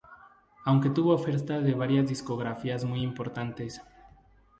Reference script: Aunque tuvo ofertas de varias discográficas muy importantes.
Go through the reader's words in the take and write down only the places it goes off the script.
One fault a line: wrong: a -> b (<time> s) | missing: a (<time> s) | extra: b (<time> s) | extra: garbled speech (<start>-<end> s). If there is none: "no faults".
no faults